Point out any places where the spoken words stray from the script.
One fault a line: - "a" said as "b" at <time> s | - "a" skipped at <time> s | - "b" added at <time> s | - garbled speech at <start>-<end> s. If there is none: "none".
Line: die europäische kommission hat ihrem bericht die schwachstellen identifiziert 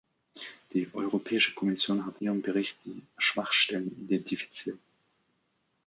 none